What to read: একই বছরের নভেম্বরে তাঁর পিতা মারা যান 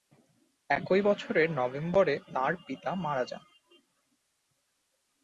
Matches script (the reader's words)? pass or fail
pass